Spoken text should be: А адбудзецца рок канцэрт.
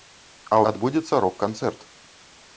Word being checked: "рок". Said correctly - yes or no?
yes